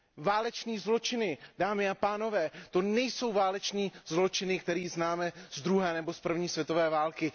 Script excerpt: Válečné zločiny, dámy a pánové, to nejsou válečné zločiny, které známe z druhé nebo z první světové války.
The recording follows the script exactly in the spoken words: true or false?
true